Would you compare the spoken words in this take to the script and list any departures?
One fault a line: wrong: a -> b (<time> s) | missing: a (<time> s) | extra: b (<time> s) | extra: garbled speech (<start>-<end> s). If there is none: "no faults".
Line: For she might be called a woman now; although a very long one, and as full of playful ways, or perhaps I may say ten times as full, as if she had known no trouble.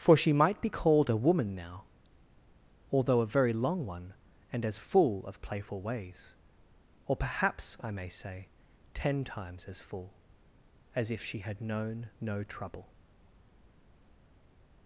no faults